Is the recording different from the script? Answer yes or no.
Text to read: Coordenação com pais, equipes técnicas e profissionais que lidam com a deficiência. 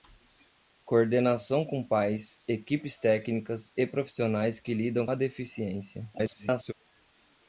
yes